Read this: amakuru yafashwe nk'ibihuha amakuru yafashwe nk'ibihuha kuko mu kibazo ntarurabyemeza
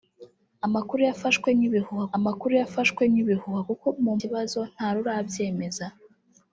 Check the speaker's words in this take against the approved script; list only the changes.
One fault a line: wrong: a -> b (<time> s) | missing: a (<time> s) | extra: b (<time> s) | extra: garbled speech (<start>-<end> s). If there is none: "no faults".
no faults